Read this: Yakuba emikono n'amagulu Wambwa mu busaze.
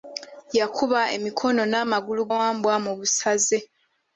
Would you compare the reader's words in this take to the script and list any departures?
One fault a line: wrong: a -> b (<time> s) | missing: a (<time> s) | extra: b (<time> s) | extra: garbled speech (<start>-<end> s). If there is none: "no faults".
no faults